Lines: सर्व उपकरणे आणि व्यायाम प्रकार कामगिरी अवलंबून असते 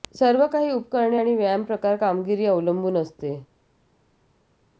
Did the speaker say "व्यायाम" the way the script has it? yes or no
yes